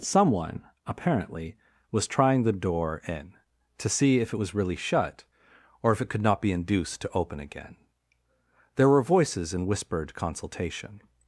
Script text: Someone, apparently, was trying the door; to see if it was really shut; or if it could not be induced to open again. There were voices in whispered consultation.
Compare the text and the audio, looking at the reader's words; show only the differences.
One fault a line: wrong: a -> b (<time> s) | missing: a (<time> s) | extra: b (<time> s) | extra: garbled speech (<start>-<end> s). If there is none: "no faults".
extra: in (3.1 s)